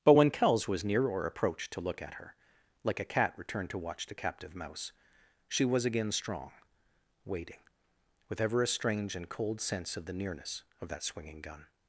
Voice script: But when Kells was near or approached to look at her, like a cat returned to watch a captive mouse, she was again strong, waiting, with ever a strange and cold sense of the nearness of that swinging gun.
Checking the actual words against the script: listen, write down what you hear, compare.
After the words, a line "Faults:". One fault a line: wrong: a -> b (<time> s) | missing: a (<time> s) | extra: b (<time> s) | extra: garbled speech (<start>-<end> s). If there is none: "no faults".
But when Kells was near or approached to look at her, like a cat returned to watch the captive mouse, she was again strong, waiting, with ever a strange and cold sense of the nearness of that swinging gun.
Faults:
wrong: a -> the (4.1 s)